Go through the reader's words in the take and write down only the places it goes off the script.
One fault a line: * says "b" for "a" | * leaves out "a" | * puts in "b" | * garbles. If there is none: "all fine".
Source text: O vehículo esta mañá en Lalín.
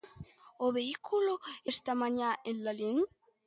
all fine